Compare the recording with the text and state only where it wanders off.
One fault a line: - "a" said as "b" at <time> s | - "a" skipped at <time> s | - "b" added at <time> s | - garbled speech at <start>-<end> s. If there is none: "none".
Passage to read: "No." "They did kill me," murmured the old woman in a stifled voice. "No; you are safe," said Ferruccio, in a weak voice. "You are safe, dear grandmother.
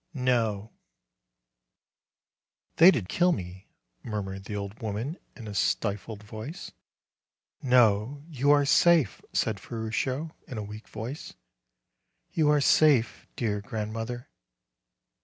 none